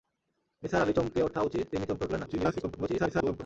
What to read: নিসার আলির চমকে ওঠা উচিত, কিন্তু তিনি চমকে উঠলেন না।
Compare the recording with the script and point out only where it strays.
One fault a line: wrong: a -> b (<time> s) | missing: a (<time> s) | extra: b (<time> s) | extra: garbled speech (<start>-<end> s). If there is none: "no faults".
missing: কিন্তু (1.7 s)
extra: garbled speech (2.3-3.4 s)